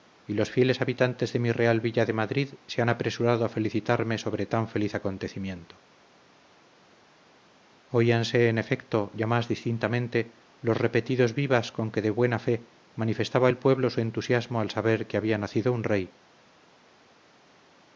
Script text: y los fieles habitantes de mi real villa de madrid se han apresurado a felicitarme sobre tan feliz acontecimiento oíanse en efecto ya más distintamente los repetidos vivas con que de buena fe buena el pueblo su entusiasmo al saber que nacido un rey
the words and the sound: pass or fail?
fail